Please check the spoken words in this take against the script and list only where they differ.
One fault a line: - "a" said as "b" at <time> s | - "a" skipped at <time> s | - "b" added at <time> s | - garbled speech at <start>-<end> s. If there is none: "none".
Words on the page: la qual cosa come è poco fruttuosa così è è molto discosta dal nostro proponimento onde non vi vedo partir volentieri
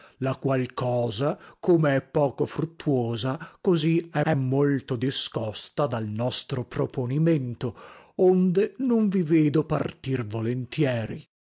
none